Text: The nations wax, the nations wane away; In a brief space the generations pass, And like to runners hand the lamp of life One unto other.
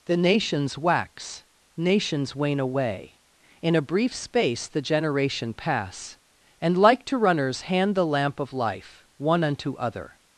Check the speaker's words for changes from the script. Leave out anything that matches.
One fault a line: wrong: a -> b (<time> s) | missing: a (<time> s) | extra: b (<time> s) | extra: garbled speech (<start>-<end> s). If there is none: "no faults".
missing: the (1.4 s)
wrong: generations -> generation (4.8 s)